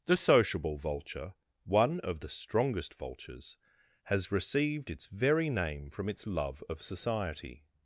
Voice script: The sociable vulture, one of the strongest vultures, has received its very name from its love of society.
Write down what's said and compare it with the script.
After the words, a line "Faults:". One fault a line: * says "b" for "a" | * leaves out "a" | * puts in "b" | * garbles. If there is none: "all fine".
The sociable vulture, one of the strongest vultures, has received its very name from its love of society.
Faults:
all fine